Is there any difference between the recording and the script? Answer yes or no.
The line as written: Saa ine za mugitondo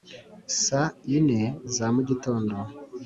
no